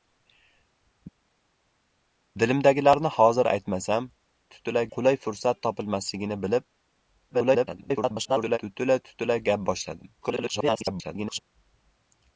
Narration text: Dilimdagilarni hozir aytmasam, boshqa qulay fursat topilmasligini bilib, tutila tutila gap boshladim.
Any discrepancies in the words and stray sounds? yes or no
yes